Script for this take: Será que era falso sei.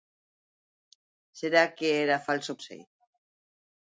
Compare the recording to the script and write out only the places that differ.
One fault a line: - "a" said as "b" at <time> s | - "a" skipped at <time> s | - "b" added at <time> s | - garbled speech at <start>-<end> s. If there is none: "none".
none